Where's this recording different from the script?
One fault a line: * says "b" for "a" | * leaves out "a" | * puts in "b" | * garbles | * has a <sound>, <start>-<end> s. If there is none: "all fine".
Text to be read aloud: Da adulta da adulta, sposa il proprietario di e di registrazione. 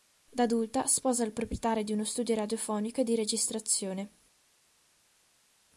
* leaves out "da adulta"
* puts in "uno studio radiofonico"